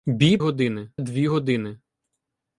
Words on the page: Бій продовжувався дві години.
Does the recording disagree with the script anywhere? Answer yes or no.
yes